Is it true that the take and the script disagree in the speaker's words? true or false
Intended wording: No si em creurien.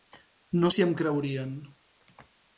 false